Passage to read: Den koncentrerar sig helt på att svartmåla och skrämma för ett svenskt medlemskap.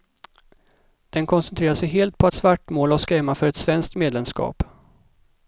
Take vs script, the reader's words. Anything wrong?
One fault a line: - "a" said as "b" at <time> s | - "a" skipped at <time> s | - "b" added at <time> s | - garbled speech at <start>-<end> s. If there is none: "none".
none